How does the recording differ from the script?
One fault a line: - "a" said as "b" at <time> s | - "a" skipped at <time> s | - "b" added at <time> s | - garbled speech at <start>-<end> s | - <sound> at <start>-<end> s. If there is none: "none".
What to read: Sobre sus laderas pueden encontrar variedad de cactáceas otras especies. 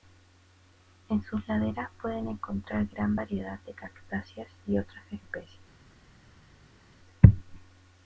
- "Sobre" said as "En" at 1.1 s
- "gran" added at 2.9 s
- "y" added at 4.7 s